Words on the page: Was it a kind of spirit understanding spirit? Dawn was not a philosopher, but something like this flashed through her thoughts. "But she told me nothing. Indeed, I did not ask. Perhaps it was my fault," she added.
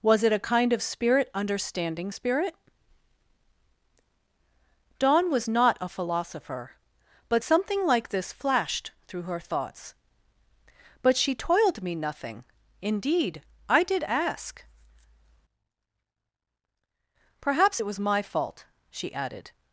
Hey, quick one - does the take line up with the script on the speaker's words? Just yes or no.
no